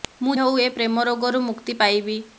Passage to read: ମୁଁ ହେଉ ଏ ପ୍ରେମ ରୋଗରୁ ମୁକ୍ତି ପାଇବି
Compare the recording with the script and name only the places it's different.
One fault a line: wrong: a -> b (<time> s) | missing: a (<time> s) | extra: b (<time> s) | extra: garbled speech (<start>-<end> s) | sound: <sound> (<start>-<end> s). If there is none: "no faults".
no faults